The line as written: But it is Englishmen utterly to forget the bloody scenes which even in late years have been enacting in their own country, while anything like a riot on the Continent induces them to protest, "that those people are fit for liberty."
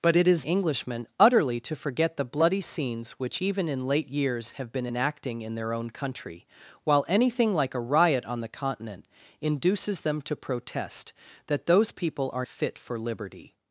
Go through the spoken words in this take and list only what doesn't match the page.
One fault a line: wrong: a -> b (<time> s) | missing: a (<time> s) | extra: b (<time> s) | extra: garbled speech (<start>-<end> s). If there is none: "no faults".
no faults